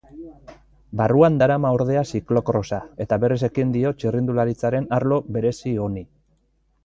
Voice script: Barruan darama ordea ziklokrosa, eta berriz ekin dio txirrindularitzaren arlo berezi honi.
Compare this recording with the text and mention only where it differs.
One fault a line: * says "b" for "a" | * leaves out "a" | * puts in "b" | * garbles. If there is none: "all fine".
all fine